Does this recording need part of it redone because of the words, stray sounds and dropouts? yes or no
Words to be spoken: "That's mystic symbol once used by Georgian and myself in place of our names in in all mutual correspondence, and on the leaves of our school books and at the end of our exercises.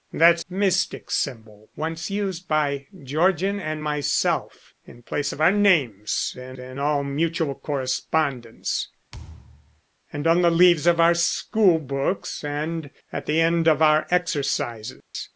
yes